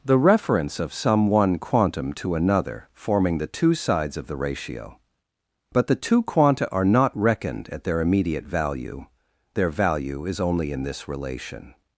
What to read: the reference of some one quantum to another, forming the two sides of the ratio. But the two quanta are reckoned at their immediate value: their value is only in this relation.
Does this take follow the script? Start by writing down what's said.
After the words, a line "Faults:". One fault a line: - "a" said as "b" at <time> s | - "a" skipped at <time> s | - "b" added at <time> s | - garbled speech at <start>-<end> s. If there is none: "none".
the reference of some one quantum to another, forming the two sides of the ratio. But the two quanta are not reckoned at their immediate value: their value is only in this relation.
Faults:
- "not" added at 6.8 s